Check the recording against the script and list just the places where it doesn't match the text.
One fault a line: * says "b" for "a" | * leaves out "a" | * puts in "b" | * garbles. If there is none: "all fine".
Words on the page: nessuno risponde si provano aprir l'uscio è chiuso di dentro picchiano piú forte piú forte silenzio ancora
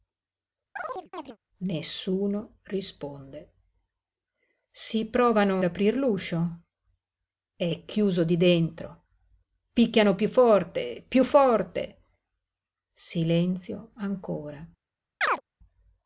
all fine